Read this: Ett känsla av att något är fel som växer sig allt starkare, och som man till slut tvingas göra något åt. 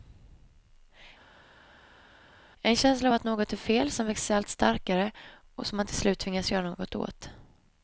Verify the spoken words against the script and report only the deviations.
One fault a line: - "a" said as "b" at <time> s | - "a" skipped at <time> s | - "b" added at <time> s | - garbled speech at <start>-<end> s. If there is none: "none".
- "Ett" said as "En" at 2.6 s